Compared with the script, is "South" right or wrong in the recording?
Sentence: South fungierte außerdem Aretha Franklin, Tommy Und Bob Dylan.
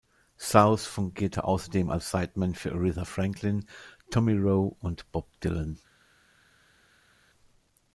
right